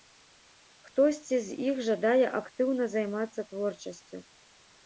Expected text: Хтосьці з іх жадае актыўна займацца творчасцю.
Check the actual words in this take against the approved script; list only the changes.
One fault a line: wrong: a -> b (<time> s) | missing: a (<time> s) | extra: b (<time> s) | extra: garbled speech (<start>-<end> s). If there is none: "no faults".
no faults